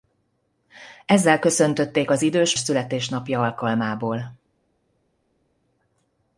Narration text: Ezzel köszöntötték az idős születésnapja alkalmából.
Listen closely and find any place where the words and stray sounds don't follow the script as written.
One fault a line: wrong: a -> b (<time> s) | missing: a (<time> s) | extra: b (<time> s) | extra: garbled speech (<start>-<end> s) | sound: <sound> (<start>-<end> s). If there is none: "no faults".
no faults